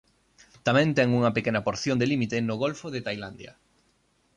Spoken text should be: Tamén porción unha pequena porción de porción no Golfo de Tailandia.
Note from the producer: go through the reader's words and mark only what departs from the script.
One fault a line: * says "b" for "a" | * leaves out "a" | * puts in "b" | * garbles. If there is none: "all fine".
* says "ten" for "porción"
* says "límite" for "porción"